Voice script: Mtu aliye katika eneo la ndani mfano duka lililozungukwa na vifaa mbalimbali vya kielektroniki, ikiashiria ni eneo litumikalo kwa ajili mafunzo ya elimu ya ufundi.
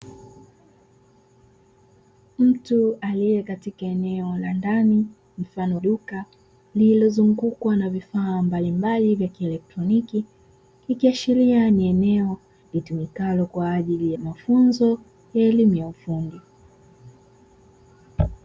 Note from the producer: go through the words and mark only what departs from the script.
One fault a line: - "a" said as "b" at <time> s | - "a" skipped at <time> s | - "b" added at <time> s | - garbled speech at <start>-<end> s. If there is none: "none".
none